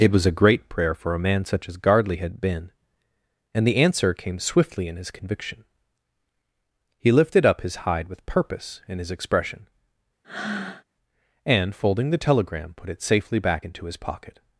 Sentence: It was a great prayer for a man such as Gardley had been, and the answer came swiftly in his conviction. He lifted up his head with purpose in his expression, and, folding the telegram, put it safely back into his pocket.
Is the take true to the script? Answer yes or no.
no